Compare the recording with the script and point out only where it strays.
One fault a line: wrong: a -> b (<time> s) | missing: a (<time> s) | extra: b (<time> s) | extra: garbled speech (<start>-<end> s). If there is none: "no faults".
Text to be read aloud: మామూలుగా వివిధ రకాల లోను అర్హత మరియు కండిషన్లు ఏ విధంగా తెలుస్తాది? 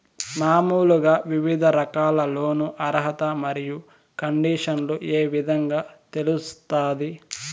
no faults